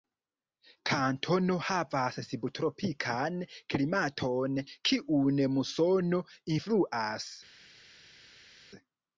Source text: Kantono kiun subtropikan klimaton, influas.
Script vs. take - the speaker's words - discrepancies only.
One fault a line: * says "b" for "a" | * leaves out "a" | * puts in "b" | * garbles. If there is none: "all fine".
* says "havas" for "kiun"
* puts in "kiun musono"